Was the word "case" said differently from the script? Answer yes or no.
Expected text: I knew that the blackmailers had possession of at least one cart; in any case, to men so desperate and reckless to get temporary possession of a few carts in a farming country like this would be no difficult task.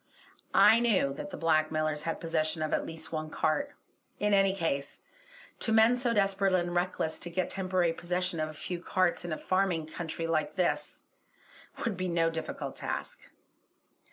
no